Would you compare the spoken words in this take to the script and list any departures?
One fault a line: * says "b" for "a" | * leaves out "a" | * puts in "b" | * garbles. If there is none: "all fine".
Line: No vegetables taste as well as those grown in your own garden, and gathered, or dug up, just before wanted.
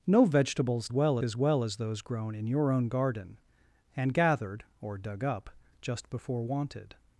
* says "well" for "taste"